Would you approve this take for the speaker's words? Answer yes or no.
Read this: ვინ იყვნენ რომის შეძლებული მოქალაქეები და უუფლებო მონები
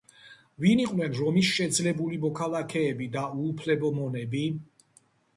yes